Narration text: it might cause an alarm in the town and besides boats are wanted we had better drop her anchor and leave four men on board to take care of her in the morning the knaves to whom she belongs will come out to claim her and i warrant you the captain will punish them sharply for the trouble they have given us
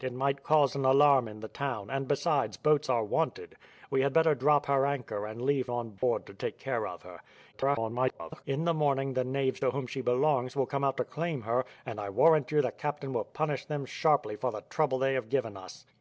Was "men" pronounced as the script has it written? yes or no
no